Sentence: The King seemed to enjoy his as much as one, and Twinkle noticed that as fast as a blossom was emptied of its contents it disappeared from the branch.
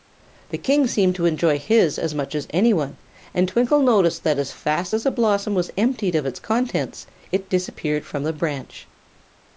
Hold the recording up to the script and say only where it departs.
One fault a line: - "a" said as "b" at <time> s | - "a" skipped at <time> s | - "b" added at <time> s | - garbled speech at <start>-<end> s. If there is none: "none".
- "any" added at 2.5 s